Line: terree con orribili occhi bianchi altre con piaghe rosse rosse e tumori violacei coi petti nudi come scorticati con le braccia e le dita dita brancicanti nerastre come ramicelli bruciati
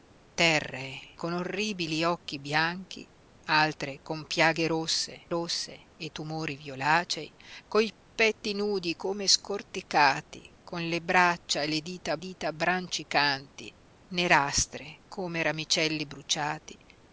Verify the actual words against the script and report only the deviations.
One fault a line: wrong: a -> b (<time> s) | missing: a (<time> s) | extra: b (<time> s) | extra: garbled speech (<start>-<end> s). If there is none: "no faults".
no faults